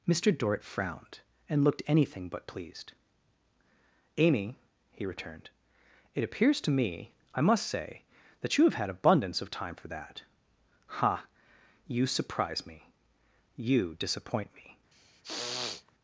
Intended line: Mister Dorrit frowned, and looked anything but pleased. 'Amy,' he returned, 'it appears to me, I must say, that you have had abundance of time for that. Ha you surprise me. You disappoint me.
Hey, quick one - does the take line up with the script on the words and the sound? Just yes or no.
no